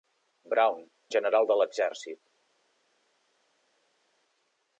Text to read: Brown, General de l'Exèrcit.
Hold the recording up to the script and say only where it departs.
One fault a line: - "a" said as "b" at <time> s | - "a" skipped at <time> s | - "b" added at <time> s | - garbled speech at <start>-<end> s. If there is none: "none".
none